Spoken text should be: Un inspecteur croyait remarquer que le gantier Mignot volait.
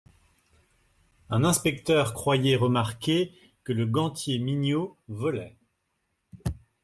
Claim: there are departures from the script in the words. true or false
false